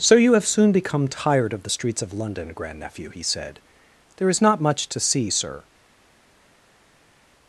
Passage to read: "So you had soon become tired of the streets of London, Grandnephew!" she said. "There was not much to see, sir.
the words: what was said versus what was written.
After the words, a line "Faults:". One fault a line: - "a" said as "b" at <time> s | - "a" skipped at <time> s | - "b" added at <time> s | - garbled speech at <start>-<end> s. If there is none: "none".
"So you have soon become tired of the streets of London, Grandnephew!" he said. "There is not much to see, sir.
Faults:
- "had" said as "have" at 0.3 s
- "she" said as "he" at 3.1 s
- "was" said as "is" at 4.3 s